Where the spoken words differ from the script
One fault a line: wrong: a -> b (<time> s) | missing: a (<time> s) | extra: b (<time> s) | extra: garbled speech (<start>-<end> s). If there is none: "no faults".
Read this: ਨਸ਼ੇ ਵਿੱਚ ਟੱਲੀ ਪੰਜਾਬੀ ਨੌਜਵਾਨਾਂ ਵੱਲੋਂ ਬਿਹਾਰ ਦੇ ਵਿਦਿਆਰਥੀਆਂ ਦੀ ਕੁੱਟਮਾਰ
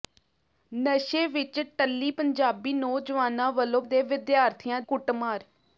missing: ਬਿਹਾਰ (3.8 s)
missing: ਦੀ (4.8 s)